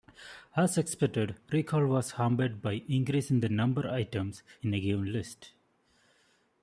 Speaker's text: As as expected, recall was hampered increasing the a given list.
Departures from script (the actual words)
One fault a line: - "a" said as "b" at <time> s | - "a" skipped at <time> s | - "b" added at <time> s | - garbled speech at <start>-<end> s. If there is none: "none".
- "as" skipped at 0.8 s
- "by" added at 2.6 s
- "number items in" added at 3.5 s